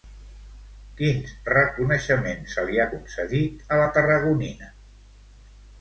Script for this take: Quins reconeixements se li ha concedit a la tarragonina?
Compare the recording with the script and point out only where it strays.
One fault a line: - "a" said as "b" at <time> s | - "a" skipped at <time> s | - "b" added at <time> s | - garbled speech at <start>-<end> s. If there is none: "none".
none